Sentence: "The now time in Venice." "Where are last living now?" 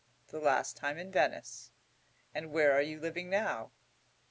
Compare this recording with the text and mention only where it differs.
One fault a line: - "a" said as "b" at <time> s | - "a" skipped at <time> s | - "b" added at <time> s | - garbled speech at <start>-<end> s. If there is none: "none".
- "now" said as "last" at 0.4 s
- "And" added at 2.3 s
- "last" said as "you" at 2.8 s